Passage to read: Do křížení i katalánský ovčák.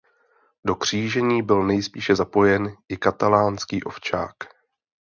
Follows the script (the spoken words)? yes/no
no